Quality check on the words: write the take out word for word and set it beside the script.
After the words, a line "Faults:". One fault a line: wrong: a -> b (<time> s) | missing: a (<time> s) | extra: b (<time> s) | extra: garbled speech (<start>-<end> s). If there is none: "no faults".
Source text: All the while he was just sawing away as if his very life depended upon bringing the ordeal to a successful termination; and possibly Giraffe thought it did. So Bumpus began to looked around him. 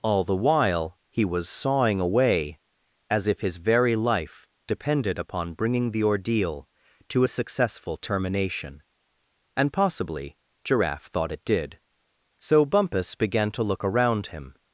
All the while he was sawing away as if his very life depended upon bringing the ordeal to a successful termination; and possibly Giraffe thought it did. So Bumpus began to look around him.
Faults:
missing: just (1.5 s)
wrong: looked -> look (13.6 s)